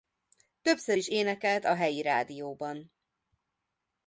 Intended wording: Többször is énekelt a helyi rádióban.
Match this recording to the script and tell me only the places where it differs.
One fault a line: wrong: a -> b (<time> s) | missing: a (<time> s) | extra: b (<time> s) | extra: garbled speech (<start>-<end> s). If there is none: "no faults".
no faults